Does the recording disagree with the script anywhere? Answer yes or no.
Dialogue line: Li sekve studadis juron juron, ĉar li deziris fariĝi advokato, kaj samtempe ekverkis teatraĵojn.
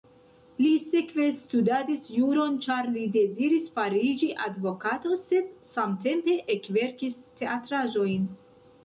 yes